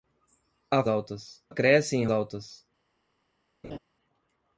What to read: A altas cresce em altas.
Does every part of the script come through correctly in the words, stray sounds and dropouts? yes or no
no